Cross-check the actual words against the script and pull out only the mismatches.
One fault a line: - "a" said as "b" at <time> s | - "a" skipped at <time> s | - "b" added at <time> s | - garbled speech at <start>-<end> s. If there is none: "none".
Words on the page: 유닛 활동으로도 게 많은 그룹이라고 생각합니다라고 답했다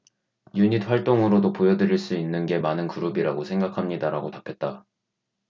- "보여드릴 수 있는" added at 1.5 s